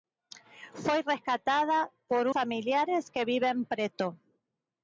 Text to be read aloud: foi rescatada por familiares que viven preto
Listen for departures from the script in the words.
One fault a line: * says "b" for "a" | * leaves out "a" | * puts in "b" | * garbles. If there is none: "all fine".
all fine